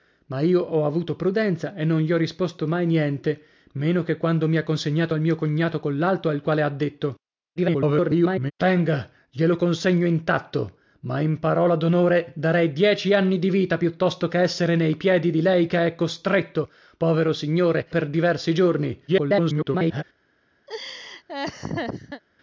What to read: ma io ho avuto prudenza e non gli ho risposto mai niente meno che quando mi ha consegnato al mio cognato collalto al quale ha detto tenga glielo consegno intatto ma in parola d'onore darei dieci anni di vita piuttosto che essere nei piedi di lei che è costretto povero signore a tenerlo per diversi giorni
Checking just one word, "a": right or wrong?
wrong